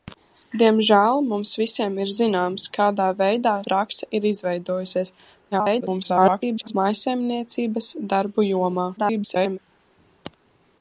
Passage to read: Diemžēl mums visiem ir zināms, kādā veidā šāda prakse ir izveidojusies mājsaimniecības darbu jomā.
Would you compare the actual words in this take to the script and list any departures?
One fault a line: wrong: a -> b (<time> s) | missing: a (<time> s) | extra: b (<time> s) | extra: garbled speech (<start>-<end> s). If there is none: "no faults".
missing: šāda (3.5 s)
extra: garbled speech (5.5-6.7 s)
extra: garbled speech (9.0-9.6 s)